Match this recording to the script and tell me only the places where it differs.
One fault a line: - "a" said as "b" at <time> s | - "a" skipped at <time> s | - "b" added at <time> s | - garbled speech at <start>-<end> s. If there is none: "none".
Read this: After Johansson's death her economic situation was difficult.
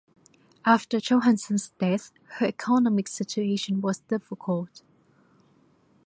none